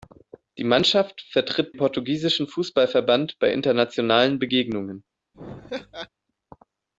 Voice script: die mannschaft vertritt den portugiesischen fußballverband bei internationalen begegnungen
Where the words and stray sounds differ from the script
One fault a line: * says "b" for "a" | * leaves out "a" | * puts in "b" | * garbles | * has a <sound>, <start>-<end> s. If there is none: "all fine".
* leaves out "den"
* has a laugh, 5.3-6.1 s